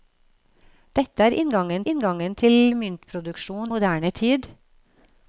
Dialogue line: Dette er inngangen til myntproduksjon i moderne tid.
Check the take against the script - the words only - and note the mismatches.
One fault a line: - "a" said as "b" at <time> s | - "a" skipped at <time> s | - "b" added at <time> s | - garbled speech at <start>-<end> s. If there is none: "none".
- "inngangen" added at 1.9 s
- "i" skipped at 3.7 s